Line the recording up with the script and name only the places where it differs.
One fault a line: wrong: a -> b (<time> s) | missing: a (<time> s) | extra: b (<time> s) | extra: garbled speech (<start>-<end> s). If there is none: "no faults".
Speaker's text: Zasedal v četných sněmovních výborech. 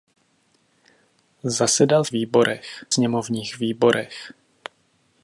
wrong: četných -> výborech (2.1 s)